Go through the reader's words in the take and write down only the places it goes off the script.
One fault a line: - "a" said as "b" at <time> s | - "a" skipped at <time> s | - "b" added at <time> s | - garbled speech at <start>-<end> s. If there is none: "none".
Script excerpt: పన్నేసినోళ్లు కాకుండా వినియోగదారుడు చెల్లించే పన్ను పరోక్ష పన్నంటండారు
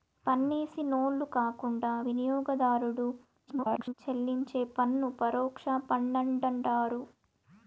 - garbled speech at 3.5-3.9 s